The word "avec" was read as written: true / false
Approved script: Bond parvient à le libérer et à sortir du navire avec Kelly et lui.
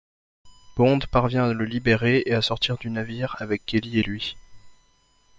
true